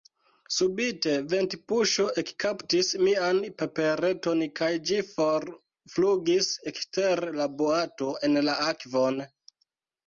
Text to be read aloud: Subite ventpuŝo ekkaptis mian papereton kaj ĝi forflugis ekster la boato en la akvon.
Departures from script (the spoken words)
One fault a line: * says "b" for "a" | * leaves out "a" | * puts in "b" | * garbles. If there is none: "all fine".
all fine